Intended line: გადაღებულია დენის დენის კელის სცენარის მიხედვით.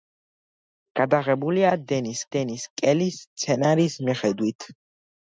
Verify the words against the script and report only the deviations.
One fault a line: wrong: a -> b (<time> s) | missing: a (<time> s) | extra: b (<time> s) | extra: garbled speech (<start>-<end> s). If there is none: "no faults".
no faults